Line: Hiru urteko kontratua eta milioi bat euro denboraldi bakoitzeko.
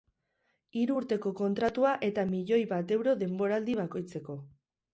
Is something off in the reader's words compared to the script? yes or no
no